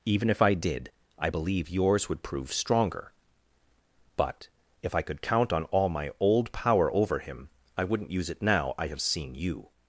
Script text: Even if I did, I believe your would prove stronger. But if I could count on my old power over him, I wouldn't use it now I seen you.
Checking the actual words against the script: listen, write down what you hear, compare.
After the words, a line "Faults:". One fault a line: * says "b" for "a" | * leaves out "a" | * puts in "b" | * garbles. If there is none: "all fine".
Even if I did, I believe yours would prove stronger. But if I could count on all my old power over him, I wouldn't use it now I have seen you.
Faults:
* says "yours" for "your"
* puts in "all"
* puts in "have"